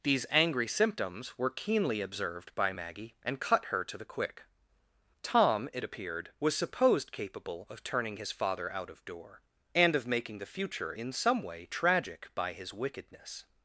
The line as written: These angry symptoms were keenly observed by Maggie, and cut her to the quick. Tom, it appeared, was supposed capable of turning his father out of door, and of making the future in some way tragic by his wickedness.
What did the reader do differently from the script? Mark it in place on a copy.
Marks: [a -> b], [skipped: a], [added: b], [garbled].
These angry symptoms were keenly observed by Maggie, and cut her to the quick. Tom, it appeared, was supposed capable of turning his father out of door, and of making the future in some way tragic by his wickedness.